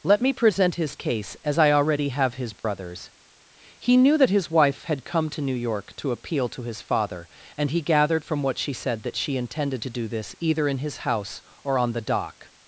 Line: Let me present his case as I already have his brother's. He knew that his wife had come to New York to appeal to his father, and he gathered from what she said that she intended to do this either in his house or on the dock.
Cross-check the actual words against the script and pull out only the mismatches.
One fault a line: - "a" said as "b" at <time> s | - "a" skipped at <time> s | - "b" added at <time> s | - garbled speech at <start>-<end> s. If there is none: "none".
none